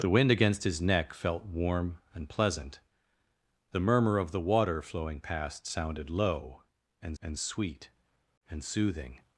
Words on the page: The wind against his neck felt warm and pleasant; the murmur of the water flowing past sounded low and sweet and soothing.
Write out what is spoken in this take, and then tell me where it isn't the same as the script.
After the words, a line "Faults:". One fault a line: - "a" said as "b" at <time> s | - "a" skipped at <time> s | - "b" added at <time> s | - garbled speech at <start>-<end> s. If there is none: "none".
The wind against his neck felt warm and pleasant; the murmur of the water flowing past sounded low and and sweet and soothing.
Faults:
- "and" added at 7.2 s